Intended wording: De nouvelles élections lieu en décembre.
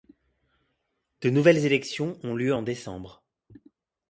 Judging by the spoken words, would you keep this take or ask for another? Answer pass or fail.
fail